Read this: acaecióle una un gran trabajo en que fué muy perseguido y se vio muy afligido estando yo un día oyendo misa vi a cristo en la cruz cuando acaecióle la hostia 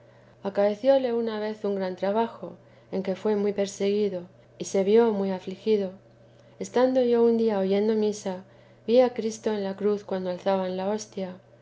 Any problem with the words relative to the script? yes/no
yes